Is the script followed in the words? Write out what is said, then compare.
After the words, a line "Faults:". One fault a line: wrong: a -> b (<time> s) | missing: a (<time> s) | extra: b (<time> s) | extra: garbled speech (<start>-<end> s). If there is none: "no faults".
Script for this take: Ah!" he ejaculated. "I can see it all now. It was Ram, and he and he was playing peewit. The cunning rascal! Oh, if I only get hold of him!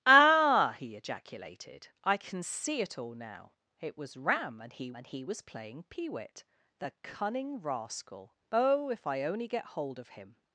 Ah!" he ejaculated. "I can see it all now. It was Ram, and he and he was playing peewit. The cunning rascal! Oh, if I only get hold of him!
Faults:
no faults